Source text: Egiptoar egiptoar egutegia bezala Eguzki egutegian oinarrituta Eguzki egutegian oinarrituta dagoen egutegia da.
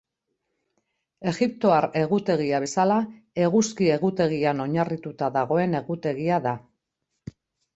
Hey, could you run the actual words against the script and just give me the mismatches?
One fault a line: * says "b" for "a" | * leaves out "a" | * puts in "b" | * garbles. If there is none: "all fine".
* leaves out "egiptoar"
* leaves out "Eguzki egutegian oinarrituta"